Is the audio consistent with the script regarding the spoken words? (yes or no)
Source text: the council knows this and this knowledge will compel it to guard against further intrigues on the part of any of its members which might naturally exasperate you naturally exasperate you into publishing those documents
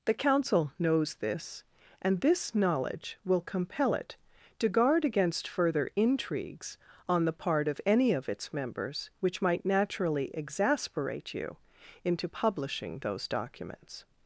no